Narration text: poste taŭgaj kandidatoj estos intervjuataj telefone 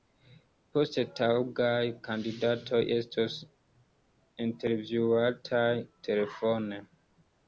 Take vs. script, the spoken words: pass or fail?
pass